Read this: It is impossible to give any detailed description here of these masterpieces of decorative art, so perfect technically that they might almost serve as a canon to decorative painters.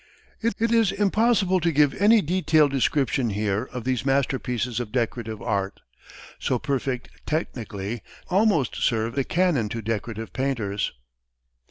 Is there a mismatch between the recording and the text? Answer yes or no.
yes